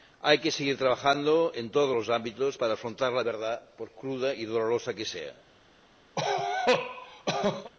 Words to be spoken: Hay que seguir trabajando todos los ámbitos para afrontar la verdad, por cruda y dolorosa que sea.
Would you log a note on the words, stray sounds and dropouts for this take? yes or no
yes